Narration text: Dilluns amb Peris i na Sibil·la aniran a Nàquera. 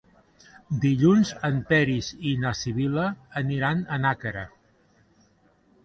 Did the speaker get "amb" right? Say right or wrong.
wrong